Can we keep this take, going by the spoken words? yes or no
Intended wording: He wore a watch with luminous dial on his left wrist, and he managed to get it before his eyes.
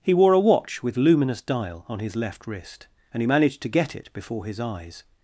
yes